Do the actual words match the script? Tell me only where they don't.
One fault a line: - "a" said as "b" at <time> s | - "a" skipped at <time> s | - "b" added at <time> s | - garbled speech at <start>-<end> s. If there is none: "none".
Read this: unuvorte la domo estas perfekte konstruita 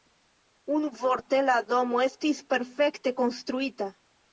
- "estas" said as "estis" at 2.1 s